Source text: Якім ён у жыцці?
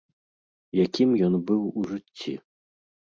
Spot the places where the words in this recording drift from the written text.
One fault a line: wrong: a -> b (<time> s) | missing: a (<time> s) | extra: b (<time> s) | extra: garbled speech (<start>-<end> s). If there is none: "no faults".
extra: быў (1.5 s)